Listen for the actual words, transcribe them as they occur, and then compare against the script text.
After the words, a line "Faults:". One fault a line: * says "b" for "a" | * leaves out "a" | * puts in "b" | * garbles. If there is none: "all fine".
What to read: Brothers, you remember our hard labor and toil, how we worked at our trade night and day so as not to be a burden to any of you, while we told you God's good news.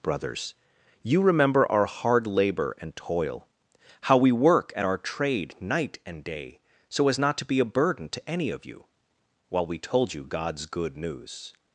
Brothers, you remember our hard labor and toil, how we work at our trade night and day so as not to be a burden to any of you, while we told you God's good news.
Faults:
* says "work" for "worked"